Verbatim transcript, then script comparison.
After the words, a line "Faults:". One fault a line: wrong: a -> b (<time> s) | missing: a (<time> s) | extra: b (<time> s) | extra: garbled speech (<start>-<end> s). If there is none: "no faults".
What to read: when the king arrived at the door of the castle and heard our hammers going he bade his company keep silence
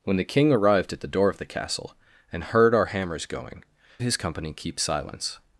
when the king arrived at the door of the castle and heard our hammers going his company keep silence
Faults:
missing: he bade (3.6 s)